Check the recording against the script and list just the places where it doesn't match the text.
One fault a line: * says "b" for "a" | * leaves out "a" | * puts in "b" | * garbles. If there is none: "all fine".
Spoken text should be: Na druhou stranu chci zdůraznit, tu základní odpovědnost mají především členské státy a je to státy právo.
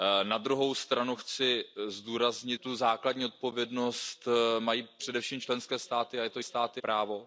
all fine